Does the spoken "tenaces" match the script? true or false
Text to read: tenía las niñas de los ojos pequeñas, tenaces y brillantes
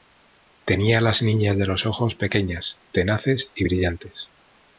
true